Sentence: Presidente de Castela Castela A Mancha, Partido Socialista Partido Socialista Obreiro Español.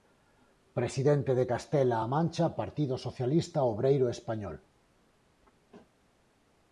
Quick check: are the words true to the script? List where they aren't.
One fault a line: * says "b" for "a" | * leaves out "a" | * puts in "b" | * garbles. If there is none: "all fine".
* leaves out "Castela"
* leaves out "Partido Socialista"